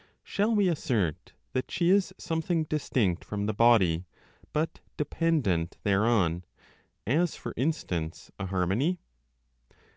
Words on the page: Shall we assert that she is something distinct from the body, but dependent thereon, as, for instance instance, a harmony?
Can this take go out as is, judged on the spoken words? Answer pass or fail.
fail